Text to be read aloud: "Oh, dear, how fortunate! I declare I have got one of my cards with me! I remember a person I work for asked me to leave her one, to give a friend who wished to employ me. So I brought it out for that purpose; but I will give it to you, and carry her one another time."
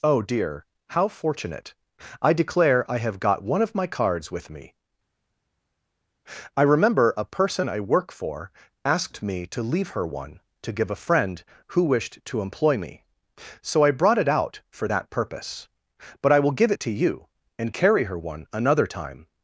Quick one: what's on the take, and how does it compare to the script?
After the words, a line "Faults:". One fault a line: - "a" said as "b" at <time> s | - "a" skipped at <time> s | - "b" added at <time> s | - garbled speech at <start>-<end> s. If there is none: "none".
"Oh, dear, how fortunate! I declare I have got one of my cards with me! I remember a person I work for asked me to leave her one, to give a friend who wished to employ me. So I brought it out for that purpose; but I will give it to you, and carry her one another time."
Faults:
none